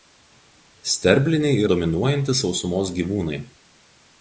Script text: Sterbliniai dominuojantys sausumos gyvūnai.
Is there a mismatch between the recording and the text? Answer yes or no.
no